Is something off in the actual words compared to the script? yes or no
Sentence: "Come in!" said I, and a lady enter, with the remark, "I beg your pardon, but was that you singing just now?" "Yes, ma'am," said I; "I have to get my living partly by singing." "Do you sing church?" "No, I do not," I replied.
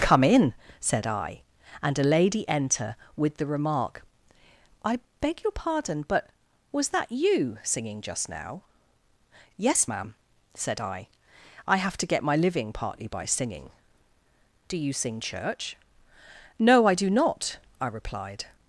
no